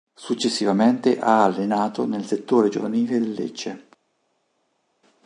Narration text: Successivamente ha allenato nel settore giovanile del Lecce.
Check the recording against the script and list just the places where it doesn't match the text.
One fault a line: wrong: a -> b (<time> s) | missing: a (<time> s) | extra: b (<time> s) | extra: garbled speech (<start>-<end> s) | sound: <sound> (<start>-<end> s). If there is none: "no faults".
no faults